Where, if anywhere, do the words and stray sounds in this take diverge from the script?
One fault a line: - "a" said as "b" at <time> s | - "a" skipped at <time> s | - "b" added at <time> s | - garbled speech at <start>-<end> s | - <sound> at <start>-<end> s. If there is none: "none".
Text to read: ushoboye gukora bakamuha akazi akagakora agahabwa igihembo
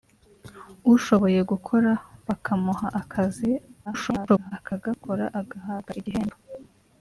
- garbled speech at 3.9-4.5 s